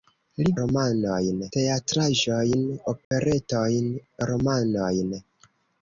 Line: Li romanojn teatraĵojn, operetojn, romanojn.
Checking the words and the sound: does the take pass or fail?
fail